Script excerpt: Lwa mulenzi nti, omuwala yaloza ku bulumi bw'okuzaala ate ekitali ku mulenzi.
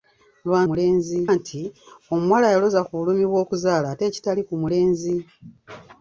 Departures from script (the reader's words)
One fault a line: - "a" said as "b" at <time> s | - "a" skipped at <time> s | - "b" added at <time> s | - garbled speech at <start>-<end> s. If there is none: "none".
none